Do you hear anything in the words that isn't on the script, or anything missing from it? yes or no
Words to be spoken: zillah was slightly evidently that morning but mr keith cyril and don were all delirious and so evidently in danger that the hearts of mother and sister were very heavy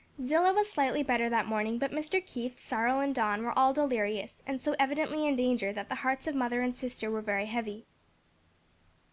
yes